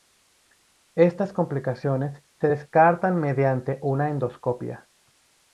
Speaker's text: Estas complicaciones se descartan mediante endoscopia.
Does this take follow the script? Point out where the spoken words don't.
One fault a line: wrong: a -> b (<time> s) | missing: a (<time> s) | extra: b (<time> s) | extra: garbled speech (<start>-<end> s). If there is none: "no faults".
extra: una (3.8 s)